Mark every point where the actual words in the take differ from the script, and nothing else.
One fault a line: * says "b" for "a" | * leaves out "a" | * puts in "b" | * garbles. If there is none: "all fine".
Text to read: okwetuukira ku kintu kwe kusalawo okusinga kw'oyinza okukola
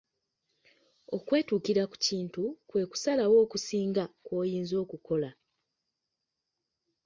all fine